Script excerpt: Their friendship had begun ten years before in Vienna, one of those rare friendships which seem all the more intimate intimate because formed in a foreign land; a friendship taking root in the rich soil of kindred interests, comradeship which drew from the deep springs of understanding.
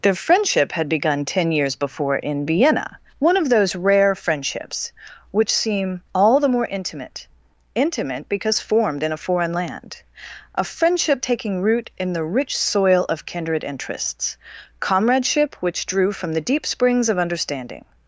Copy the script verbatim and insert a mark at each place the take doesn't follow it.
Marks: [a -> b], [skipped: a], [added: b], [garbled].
Their friendship had begun ten years before in Vienna, one of those rare friendships which seem all the more intimate intimate because formed in a foreign land; a friendship taking root in the rich soil of kindred interests, comradeship which drew from the deep springs of understanding.